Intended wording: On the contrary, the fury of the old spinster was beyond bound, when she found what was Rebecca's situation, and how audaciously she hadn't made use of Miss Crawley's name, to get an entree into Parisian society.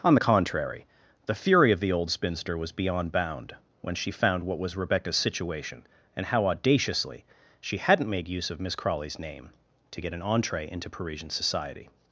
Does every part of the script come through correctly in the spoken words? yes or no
yes